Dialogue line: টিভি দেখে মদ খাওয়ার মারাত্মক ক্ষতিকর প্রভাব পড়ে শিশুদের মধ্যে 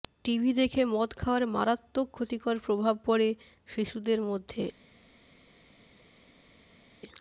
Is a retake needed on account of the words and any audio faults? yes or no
no